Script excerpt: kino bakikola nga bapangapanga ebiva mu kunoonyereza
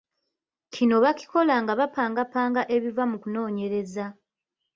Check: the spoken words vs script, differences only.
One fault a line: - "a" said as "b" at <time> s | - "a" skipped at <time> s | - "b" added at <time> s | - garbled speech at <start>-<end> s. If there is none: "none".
none